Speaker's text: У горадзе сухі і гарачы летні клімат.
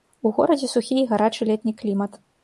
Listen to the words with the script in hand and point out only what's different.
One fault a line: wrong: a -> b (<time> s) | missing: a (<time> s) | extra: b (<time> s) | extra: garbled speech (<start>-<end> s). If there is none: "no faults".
no faults